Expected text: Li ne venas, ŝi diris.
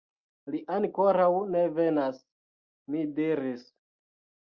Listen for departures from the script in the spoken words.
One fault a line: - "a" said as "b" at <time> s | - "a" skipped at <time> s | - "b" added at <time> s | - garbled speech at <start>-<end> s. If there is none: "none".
- "ankoraŭ" added at 0.8 s
- "ŝi" said as "mi" at 2.9 s